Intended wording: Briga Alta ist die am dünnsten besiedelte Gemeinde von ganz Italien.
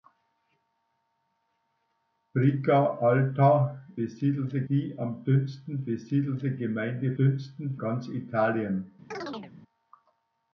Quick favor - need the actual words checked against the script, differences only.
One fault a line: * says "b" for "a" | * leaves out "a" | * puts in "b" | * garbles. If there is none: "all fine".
* says "besiedelte" for "ist"
* says "dünnsten" for "von"